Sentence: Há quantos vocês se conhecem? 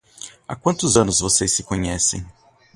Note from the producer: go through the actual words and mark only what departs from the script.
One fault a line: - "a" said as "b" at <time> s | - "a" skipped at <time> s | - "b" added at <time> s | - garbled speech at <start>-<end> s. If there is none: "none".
- "anos" added at 0.9 s